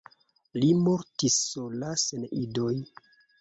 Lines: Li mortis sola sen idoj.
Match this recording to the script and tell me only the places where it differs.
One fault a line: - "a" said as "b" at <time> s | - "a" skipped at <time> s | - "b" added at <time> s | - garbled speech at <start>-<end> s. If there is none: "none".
none